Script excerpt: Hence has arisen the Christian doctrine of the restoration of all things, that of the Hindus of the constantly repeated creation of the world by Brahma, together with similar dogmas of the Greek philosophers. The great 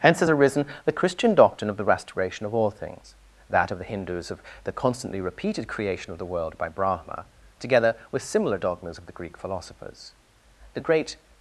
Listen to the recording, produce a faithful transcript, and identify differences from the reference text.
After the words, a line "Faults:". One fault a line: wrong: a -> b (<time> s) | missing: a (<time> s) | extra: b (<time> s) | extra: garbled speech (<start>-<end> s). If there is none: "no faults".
Hence has arisen the Christian doctrine of the restoration of all things, that of the Hindus of the constantly repeated creation of the world by Brahma, together with similar dogmas of the Greek philosophers. The great
Faults:
no faults